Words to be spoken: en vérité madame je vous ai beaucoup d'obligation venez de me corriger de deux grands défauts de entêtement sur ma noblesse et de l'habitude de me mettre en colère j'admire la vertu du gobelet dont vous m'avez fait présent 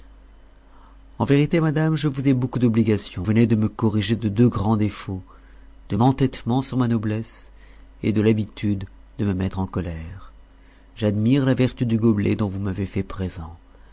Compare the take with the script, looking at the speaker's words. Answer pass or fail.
pass